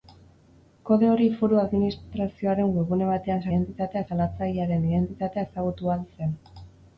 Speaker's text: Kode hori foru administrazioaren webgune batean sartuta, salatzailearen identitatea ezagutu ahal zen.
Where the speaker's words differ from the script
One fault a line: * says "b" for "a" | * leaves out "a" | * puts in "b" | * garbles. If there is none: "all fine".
* says "identitatea" for "sartuta"